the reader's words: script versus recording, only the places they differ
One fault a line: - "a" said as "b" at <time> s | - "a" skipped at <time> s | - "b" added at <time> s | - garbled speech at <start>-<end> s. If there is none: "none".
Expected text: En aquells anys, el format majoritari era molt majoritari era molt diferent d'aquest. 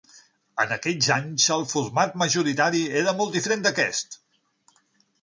- "majoritari era molt" skipped at 3.4 s